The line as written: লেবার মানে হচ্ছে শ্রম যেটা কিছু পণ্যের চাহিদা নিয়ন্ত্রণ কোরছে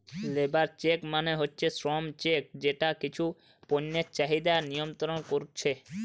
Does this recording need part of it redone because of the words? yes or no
yes